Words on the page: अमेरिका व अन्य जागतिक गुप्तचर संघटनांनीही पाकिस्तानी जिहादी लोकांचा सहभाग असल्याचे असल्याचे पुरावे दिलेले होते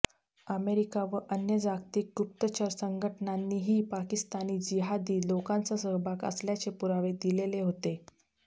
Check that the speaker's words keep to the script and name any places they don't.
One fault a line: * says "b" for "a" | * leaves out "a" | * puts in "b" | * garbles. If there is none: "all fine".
* leaves out "असल्याचे"